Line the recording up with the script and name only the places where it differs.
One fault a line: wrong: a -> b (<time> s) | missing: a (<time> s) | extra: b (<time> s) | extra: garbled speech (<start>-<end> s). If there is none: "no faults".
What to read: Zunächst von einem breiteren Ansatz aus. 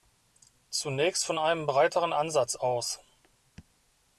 no faults